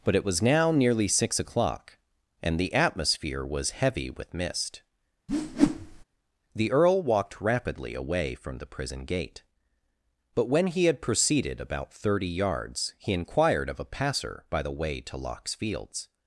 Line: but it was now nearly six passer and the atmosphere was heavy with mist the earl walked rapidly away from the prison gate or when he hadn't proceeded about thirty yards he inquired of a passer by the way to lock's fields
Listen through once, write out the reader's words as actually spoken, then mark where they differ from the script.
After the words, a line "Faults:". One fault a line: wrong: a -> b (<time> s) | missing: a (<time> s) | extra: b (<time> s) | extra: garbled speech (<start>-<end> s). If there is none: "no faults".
but it was now nearly six o'clock and the atmosphere was heavy with mist the earl walked rapidly away from the prison gate but when he had proceeded about thirty yards he inquired of a passer by the way to lock's fields
Faults:
wrong: passer -> o'clock (1.4 s)
wrong: or -> but (10.3 s)
wrong: hadn't -> had (10.8 s)